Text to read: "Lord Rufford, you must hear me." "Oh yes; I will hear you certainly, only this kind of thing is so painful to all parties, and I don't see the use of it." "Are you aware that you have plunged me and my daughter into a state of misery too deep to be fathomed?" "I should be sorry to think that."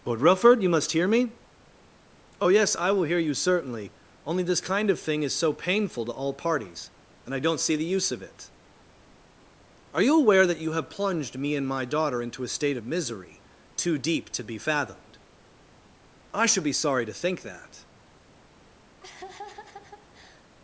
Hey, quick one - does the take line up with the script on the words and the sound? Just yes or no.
no